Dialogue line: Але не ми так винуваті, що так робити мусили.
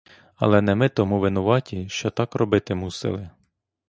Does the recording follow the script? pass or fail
fail